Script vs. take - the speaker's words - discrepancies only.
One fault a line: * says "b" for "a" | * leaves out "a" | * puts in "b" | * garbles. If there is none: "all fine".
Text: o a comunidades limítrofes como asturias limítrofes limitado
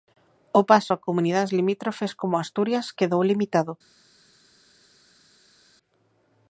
* puts in "paso"
* says "quedou" for "limítrofes"